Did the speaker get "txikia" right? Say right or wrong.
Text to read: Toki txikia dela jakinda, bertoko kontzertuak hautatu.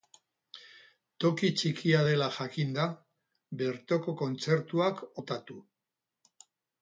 right